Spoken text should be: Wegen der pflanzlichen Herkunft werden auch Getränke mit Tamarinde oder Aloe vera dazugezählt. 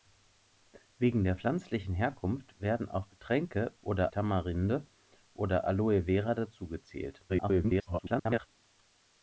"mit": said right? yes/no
no